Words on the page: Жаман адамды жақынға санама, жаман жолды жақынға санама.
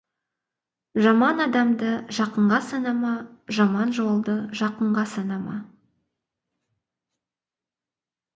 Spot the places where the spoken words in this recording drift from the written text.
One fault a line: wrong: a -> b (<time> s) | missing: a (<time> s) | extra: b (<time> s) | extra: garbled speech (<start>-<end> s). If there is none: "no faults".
no faults